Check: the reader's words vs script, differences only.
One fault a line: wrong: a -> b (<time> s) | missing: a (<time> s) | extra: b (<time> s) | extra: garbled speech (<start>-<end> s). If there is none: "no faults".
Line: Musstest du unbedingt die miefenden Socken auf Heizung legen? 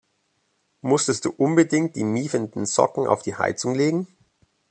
extra: die (3.2 s)